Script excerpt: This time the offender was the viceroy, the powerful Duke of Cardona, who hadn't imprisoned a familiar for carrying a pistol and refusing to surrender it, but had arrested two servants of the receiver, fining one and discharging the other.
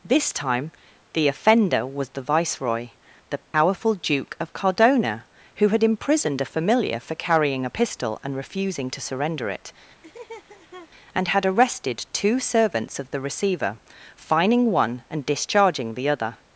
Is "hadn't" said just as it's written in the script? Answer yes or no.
no